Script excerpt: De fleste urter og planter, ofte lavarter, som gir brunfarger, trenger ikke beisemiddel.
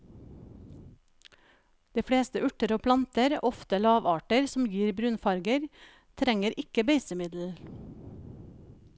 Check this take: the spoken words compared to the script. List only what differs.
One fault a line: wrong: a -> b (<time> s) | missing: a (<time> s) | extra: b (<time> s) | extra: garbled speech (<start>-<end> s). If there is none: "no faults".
no faults